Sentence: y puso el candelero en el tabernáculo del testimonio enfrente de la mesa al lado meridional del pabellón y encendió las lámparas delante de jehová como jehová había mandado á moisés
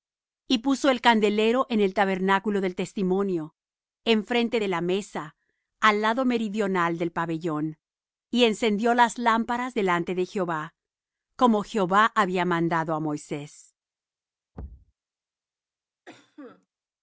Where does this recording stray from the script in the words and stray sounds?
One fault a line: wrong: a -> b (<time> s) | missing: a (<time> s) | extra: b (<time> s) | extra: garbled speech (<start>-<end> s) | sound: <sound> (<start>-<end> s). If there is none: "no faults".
sound: thud (14.5-14.9 s)
sound: cough (16.0-16.7 s)